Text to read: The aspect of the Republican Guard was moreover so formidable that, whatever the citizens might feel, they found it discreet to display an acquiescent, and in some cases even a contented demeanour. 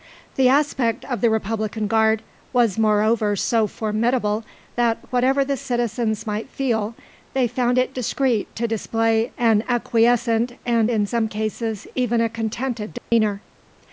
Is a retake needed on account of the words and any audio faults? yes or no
yes